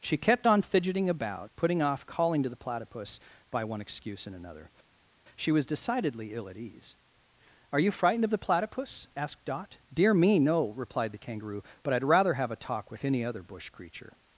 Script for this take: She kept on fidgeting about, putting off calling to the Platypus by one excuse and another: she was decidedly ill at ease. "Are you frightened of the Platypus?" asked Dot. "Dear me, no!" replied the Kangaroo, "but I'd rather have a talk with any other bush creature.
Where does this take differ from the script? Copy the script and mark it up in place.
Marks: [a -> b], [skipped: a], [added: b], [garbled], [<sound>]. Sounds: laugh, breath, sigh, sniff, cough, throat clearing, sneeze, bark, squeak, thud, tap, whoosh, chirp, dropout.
She kept on fidgeting about, putting off calling to the Platypus by one excuse and another: she was decidedly ill at ease. "Are you frightened of the Platypus?" asked Dot. "Dear me, no!" replied the Kangaroo, "but I'd rather have a talk with any other bush creature.